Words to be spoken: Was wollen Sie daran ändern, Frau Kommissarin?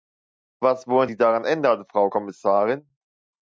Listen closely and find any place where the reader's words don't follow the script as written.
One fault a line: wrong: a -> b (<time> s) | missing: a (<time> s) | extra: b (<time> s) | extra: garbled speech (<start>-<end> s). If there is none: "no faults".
no faults